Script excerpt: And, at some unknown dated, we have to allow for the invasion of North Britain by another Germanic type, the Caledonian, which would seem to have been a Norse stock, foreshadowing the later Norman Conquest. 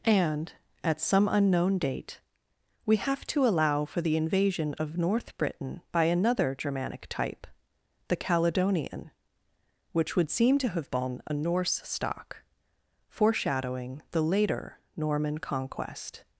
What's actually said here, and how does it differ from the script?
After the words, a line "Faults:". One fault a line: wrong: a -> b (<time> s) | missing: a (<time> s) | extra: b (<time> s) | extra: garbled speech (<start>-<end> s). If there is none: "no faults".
And, at some unknown date, we have to allow for the invasion of North Britain by another Germanic type, the Caledonian, which would seem to have been a Norse stock, foreshadowing the later Norman Conquest.
Faults:
wrong: dated -> date (1.8 s)